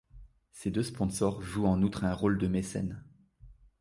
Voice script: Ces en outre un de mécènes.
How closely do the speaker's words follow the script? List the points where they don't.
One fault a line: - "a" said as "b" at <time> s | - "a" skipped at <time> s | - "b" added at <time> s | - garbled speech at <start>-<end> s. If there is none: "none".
- "deux sponsors jouent" added at 0.7 s
- "rôle" added at 2.1 s